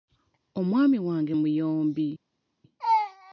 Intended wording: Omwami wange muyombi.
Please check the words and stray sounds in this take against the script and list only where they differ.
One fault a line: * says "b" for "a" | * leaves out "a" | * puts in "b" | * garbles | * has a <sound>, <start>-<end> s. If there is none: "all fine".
all fine